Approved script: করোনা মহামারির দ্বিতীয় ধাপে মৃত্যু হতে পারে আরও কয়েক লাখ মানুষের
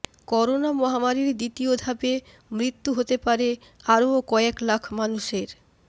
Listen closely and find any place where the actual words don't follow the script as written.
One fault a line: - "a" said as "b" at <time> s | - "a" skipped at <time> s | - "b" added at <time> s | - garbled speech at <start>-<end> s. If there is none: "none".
none